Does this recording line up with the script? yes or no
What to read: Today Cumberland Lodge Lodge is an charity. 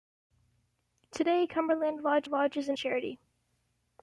yes